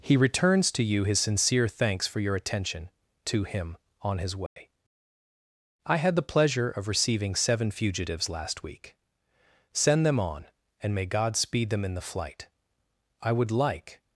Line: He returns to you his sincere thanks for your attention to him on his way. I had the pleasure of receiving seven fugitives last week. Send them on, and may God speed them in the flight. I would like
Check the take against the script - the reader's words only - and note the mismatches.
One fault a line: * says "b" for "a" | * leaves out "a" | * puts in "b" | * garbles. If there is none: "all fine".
all fine